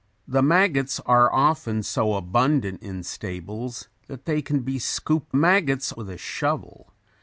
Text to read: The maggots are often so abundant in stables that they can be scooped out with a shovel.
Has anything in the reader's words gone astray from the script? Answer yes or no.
yes